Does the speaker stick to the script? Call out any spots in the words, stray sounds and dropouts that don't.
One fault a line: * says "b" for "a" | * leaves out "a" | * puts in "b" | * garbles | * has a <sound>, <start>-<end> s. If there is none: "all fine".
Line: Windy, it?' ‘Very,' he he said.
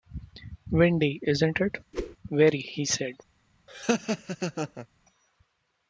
* puts in "isn't"
* has a whoosh, 1.9-2.2 s
* leaves out "he"
* has a laugh, 3.7-4.9 s